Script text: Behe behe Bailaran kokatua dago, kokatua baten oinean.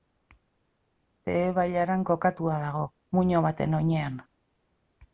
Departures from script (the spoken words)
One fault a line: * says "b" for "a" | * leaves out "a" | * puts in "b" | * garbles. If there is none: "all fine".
* leaves out "behe"
* says "muino" for "kokatua"